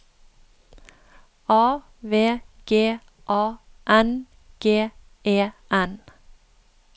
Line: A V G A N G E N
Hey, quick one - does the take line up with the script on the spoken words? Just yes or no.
yes